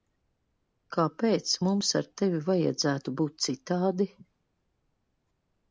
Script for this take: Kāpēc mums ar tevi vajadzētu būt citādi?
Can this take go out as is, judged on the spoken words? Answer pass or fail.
pass